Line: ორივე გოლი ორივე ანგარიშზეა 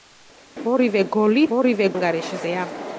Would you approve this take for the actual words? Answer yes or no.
yes